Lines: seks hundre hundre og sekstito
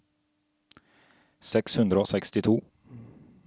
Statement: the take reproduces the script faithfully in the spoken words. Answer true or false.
false